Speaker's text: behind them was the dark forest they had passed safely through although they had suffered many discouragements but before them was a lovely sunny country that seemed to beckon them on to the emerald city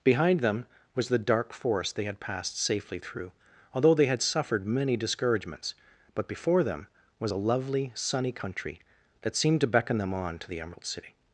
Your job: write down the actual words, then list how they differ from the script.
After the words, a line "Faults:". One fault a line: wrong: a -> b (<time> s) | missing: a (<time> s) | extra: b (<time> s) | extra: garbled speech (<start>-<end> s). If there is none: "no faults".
behind them was the dark forest they had passed safely through although they had suffered many discouragements but before them was a lovely sunny country that seemed to beckon them on to the emerald city
Faults:
no faults